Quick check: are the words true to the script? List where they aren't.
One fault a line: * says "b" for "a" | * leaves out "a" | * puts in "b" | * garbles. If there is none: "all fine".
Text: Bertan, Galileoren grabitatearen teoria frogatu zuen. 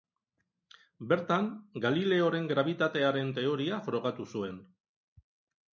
all fine